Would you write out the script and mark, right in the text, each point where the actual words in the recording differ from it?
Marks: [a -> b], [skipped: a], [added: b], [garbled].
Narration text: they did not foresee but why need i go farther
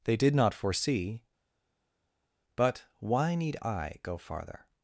they did not foresee but why need i go farther